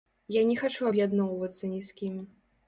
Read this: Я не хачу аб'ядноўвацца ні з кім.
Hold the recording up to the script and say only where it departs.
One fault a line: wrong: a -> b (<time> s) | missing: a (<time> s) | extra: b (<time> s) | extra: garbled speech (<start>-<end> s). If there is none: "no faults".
no faults